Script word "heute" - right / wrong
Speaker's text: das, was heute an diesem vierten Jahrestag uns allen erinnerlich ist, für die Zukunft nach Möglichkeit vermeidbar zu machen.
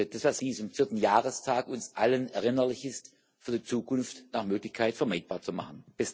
wrong